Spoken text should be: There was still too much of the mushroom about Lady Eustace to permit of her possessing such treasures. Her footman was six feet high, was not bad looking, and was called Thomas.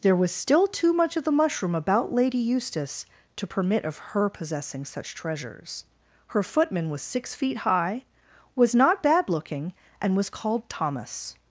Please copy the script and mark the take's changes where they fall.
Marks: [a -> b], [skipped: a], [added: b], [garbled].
There was still too much of the mushroom about Lady Eustace to permit of her possessing such treasures. Her footman was six feet high, was not bad looking, and was called Thomas.